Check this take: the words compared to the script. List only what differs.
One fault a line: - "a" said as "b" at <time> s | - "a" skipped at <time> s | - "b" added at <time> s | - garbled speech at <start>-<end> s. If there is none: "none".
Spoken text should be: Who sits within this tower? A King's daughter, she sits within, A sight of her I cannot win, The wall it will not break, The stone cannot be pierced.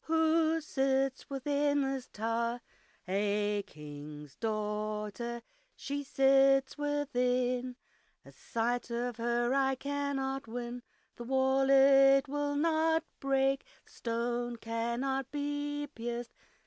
none